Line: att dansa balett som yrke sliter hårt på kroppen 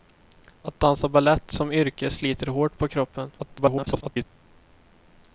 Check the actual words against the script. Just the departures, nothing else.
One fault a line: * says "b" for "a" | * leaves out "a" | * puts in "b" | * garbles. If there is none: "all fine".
* garbles